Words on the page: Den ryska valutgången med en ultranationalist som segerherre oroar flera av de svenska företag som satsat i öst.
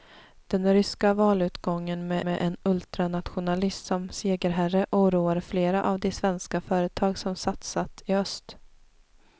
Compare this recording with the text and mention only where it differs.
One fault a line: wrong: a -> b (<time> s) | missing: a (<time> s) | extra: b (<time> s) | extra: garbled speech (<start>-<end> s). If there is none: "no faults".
extra: med (2.2 s)